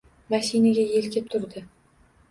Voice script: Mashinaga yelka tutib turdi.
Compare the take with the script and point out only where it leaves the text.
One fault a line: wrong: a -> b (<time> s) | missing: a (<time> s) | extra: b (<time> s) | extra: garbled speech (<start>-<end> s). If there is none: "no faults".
missing: tutib (1.2 s)